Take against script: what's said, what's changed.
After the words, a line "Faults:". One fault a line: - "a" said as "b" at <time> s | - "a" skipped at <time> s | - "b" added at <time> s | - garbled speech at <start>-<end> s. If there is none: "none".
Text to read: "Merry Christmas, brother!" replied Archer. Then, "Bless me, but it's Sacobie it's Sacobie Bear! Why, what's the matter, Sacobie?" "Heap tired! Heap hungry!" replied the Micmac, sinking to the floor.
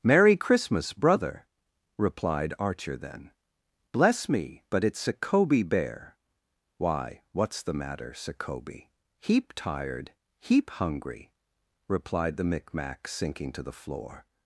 "Merry Christmas, brother!" replied Archer. Then, "Bless me, but it's Sacobie Bear! Why, what's the matter, Sacobie?" "Heap tired! Heap hungry!" replied the Micmac, sinking to the floor.
Faults:
- "it's Sacobie" skipped at 5.6 s